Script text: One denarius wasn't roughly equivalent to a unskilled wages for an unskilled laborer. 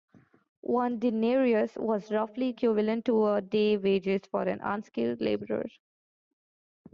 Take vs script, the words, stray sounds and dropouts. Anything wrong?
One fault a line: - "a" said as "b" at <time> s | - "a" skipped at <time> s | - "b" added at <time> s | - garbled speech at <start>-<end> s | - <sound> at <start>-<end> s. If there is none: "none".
- "wasn't" said as "was" at 1.8 s
- "unskilled" said as "day's" at 3.4 s